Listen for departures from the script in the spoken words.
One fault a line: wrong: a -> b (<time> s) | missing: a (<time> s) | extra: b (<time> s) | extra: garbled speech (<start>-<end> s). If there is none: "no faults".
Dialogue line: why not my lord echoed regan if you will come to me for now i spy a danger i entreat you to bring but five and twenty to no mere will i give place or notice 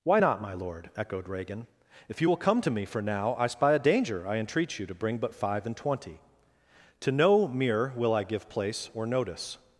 no faults